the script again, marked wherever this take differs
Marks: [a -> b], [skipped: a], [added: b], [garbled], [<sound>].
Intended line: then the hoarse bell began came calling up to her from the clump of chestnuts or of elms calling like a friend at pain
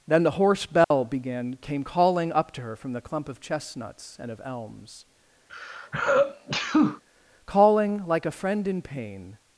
then the hoarse bell [dropout] began came calling up to her from the clump of chestnuts [or -> and] of elms [sneeze] calling like a friend [at -> in] pain